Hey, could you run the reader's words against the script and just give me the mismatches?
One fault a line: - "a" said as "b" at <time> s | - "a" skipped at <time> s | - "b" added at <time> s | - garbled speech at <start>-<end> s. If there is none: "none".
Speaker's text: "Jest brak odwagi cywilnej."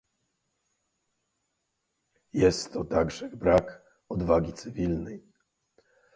- "to także" added at 2.7 s